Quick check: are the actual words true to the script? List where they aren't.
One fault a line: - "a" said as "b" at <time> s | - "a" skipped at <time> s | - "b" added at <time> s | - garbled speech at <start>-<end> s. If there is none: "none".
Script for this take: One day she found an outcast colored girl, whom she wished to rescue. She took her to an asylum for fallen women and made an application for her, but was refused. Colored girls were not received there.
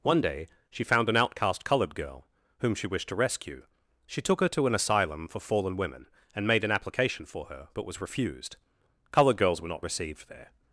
none